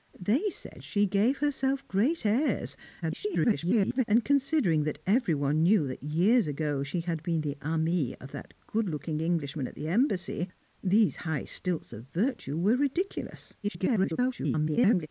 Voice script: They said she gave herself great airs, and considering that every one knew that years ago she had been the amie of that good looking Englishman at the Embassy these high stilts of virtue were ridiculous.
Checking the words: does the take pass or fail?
fail